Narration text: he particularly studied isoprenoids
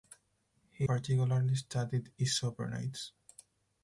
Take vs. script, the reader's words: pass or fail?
pass